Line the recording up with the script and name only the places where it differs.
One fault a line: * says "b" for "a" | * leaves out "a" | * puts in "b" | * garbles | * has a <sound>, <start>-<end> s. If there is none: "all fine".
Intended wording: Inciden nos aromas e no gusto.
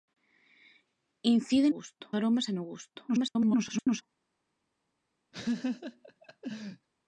* says "gusto" for "nos"
* garbles
* has a laugh, 5.3-6.9 s